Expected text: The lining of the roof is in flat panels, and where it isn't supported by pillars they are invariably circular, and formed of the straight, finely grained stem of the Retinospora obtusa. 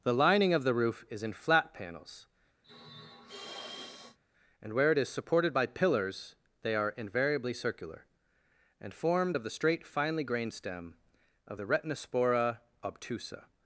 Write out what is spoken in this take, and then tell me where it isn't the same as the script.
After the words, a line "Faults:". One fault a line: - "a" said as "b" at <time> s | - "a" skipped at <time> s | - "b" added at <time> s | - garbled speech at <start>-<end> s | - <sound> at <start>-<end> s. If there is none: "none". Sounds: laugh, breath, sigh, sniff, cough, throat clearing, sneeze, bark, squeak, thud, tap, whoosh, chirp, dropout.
The lining of the roof is in flat panels, and where it is supported by pillars they are invariably circular, and formed of the straight, finely grained stem of the Retinospora obtusa.
Faults:
- sniff at 2.6-4.2 s
- "isn't" said as "is" at 5.0 s